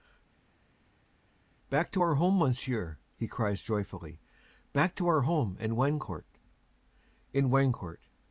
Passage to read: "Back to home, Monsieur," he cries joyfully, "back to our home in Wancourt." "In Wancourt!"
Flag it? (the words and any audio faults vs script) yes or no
yes